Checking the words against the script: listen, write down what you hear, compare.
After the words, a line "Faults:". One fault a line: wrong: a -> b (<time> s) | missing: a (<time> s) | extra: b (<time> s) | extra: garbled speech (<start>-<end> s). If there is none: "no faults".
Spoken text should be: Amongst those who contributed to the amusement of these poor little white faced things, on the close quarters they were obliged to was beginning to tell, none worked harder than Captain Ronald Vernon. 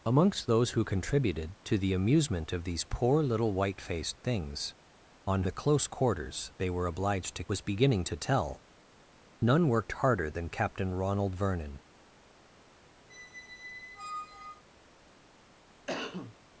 Amongst those who contributed to the amusement of these poor little white faced things, on the close quarters they were obliged to was beginning to tell, none worked harder than Captain Ronald Vernon.
Faults:
no faults